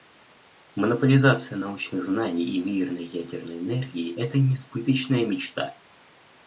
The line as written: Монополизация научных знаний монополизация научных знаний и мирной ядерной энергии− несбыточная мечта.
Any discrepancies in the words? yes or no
yes